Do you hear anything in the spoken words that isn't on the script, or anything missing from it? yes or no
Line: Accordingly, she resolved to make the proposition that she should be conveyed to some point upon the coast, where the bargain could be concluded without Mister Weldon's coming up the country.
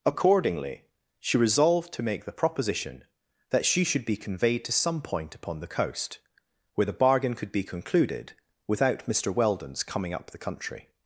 no